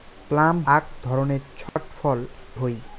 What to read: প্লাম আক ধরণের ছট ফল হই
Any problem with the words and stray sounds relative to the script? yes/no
yes